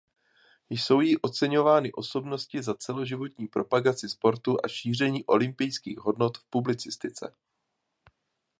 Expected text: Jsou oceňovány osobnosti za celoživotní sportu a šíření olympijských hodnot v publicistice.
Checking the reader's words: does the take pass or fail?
fail